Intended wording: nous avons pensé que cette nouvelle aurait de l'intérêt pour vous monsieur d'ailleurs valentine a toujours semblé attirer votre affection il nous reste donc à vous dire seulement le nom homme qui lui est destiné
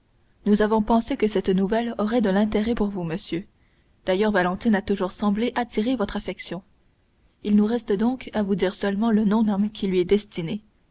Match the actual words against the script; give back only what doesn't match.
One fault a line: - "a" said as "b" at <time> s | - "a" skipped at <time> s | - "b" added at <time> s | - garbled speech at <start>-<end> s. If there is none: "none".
none